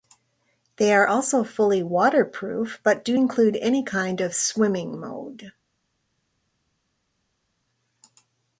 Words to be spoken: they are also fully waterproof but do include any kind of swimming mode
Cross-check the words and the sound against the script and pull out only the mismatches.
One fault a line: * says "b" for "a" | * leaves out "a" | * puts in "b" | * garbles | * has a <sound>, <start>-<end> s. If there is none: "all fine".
all fine